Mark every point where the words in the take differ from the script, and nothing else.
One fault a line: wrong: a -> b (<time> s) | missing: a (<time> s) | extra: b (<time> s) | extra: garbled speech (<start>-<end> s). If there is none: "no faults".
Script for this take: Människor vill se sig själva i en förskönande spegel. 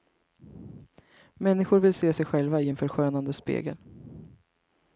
no faults